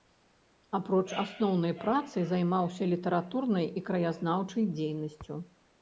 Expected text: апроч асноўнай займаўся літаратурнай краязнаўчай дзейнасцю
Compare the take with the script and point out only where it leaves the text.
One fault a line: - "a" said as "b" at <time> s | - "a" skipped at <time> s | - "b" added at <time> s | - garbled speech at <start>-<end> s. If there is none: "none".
- "працы" added at 1.8 s
- "і" added at 3.8 s